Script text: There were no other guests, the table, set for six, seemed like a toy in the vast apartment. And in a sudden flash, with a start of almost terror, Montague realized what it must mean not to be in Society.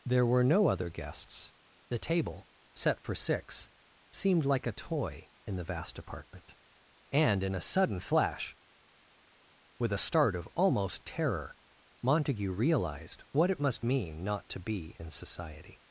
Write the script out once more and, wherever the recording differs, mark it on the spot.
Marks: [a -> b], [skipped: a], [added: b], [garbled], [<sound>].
There were no other guests, the table, set for six, seemed like a toy in the vast apartment. And in a sudden flash, with a start of almost terror, Montague realized what it must mean not to be in Society.